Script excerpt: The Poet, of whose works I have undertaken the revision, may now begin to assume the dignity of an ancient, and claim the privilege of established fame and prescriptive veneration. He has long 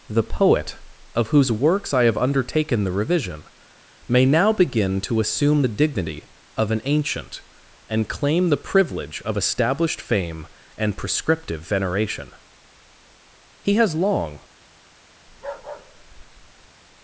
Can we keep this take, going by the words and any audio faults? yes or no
no